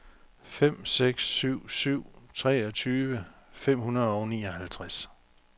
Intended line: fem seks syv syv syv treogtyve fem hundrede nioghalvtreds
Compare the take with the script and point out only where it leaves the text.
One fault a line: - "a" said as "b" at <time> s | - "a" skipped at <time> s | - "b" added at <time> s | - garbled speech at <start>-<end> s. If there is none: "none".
- "syv" skipped at 2.0 s
- "og" added at 4.1 s